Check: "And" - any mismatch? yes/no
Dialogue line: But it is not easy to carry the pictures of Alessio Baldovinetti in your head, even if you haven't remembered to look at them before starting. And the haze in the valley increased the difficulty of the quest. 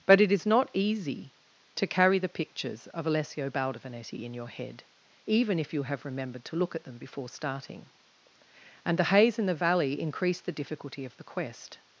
no